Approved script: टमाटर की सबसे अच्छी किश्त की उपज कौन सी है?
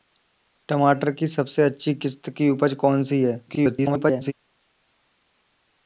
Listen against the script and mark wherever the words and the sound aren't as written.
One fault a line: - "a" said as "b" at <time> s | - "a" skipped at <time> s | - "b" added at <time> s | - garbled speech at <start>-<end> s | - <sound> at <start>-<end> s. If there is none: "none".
- garbled speech at 3.5-4.3 s